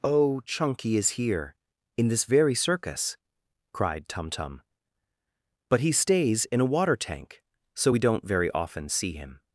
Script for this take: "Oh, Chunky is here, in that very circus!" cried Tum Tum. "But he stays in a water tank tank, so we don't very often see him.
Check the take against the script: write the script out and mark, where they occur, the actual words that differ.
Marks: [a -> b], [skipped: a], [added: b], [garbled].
"Oh, Chunky is here, in [that -> this] very circus!" cried Tum Tum. "But he stays in a water tank [skipped: tank,] so we don't very often see him.